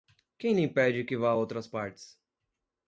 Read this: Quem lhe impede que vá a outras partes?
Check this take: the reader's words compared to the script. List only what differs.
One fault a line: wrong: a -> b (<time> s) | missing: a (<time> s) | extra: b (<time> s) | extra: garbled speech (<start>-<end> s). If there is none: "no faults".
no faults